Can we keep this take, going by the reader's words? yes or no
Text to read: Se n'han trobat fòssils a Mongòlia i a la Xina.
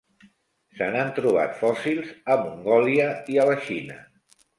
yes